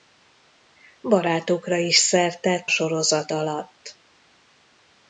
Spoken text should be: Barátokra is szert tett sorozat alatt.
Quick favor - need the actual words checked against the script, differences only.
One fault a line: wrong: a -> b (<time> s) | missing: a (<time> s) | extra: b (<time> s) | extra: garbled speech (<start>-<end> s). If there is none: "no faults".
no faults